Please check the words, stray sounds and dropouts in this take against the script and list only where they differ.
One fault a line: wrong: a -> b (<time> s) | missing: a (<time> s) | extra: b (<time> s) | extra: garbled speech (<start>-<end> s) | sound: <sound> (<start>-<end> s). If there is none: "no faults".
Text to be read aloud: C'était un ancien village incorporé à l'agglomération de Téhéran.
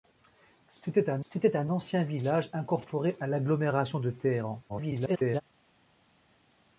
extra: c'était un (1.3 s)
extra: garbled speech (4.7-5.4 s)